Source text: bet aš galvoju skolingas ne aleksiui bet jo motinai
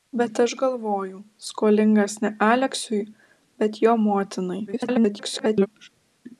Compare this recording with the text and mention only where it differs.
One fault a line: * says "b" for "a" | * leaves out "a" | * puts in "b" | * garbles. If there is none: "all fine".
* garbles